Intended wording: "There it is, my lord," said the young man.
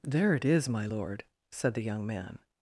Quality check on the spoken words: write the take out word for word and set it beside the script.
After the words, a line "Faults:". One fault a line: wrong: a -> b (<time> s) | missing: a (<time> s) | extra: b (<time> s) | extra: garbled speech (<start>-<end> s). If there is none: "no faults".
"There it is, my lord," said the young man.
Faults:
no faults